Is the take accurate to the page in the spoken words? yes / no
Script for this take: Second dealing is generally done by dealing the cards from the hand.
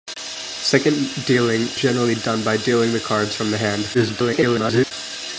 no